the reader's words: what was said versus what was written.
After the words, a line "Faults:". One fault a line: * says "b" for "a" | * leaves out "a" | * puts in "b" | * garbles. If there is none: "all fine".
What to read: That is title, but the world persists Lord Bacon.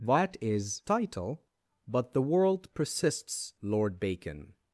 That is title, but the world persists Lord Bacon.
Faults:
all fine